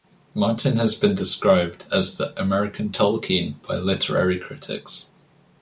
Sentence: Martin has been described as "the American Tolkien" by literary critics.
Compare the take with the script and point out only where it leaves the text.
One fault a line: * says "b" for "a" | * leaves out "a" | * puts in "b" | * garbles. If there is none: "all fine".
all fine